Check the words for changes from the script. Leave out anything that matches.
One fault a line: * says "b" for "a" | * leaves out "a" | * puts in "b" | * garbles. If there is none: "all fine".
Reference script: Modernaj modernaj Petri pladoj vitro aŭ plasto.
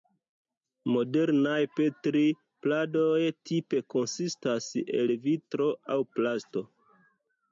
* leaves out "modernaj"
* puts in "tipe konsistas el"